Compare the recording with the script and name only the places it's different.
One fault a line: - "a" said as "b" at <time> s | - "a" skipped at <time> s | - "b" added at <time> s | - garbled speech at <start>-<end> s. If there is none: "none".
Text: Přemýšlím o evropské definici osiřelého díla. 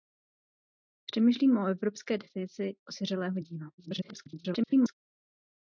- garbled speech at 3.8-4.9 s